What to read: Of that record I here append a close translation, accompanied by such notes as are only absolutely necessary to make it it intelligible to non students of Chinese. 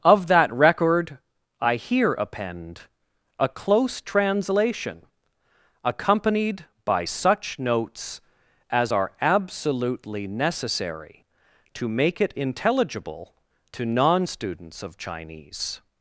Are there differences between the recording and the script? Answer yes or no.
yes